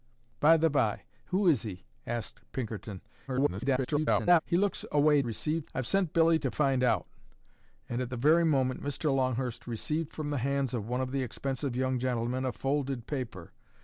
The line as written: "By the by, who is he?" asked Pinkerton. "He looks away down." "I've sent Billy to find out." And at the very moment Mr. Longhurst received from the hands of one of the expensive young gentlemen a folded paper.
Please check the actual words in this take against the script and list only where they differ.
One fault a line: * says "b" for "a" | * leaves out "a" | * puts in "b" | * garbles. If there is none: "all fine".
* garbles
* says "received" for "down"